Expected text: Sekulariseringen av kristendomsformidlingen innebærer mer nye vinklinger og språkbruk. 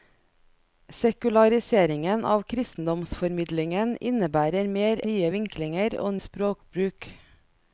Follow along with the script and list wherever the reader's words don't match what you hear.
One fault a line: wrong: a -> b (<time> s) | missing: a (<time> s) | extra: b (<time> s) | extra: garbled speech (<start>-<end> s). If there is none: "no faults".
no faults